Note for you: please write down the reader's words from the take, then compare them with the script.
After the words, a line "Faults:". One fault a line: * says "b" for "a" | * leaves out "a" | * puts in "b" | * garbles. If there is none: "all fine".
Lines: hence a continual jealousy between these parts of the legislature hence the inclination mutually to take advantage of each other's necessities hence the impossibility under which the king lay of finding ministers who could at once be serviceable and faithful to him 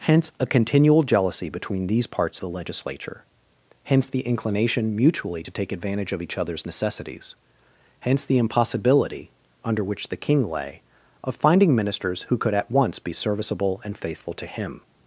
hence a continual jealousy between these parts the legislature hence the inclination mutually to take advantage of each other's necessities hence the impossibility under which the king lay of finding ministers who could at once be serviceable and faithful to him
Faults:
* leaves out "of"